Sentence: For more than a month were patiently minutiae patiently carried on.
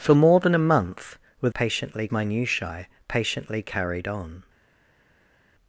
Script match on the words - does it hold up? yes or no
yes